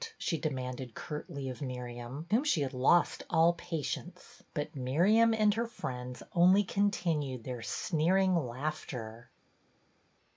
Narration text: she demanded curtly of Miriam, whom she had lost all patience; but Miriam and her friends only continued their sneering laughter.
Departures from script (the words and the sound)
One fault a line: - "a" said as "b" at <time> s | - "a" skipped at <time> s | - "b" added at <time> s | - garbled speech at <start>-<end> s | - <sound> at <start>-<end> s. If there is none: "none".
none